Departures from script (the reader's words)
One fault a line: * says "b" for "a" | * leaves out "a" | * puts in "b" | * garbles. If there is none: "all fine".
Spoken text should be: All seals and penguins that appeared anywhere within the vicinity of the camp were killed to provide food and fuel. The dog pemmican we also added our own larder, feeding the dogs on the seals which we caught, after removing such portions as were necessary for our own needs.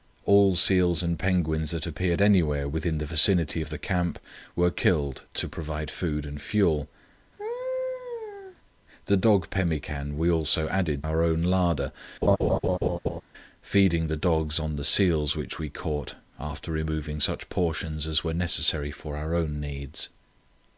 all fine